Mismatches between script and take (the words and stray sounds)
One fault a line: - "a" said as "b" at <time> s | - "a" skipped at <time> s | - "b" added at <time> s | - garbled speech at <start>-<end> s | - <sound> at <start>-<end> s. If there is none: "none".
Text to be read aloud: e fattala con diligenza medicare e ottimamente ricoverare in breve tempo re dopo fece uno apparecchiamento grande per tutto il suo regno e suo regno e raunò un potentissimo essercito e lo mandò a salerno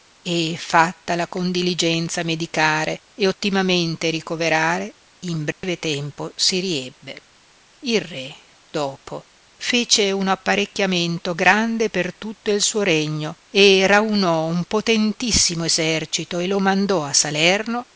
- dropout at 5.5-5.6 s
- "si riebbe il" added at 6.3 s
- "suo regno e" skipped at 13.8 s